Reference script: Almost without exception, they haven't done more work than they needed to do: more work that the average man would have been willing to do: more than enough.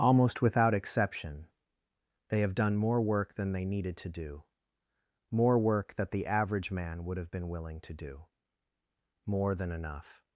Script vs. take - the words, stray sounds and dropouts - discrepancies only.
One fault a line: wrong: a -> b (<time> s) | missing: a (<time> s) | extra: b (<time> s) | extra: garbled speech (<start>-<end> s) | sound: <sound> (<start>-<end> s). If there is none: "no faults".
wrong: haven't -> have (2.4 s)